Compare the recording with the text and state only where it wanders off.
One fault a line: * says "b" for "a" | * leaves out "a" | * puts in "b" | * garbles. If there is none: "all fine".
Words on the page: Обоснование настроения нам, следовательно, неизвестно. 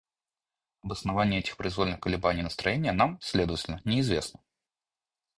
* puts in "этих произвольных колебаний"